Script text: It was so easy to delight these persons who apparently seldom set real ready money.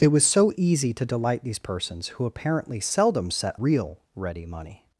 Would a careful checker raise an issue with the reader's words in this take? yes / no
no